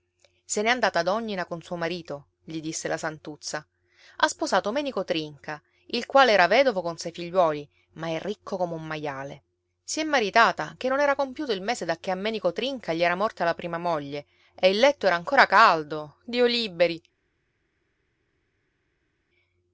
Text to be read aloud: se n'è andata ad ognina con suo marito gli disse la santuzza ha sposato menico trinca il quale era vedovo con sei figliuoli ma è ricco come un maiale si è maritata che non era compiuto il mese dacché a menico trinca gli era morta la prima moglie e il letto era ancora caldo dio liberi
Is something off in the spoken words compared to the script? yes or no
no